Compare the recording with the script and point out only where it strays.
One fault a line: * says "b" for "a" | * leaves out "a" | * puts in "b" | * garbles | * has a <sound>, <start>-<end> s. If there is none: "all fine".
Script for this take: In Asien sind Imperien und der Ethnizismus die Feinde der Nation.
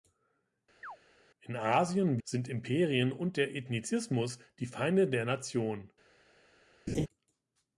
* has a chirp, 0.8-1.0 s
* has a laugh, 6.9-7.1 s